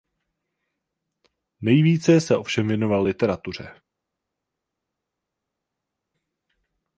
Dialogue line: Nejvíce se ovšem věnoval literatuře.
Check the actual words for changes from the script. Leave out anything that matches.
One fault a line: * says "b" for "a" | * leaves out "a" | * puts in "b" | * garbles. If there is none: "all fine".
all fine